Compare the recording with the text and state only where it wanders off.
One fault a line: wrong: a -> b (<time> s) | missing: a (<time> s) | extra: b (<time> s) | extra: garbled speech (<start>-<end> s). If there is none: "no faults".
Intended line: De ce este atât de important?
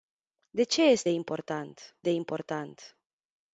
wrong: atât -> important (1.1 s)